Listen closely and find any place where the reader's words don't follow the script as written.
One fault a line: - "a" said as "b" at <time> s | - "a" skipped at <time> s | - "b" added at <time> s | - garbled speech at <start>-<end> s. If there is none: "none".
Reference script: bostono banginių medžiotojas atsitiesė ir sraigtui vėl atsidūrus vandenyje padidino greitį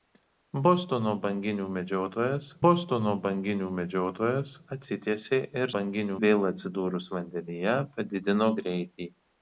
- "bostono banginių medžiotojas" added at 2.7 s
- "sraigtui" said as "banginių" at 5.8 s